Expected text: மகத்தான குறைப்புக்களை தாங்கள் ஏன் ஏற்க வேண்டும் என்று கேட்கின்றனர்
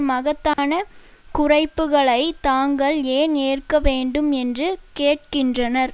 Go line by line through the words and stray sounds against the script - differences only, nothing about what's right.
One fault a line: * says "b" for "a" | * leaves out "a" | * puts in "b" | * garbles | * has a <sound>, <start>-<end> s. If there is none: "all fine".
* has a dropout, 0.5-0.6 s